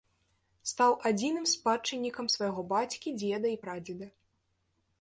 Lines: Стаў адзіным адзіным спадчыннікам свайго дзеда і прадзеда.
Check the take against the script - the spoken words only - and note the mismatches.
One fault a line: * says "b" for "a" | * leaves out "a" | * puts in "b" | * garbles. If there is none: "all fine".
* leaves out "адзіным"
* puts in "бацькі"